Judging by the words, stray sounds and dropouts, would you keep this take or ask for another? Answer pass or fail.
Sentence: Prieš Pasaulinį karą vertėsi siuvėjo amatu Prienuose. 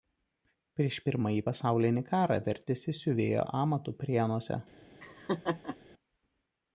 fail